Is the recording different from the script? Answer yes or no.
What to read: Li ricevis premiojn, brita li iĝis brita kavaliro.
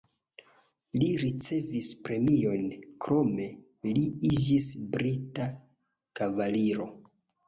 yes